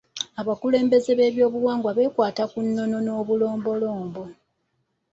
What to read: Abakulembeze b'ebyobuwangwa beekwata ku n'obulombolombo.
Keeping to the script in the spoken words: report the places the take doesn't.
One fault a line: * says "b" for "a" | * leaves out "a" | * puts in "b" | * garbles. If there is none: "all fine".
* puts in "nnono"